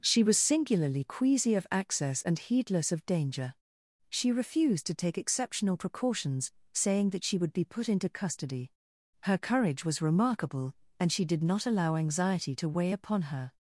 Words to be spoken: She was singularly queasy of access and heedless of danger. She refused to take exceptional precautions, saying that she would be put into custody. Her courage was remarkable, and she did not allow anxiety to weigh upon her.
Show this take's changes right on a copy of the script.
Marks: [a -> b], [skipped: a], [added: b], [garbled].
She was singularly queasy of access and heedless of danger. She refused to take exceptional precautions, saying that she would be put into custody. Her courage was remarkable, and she did not allow anxiety to weigh upon her.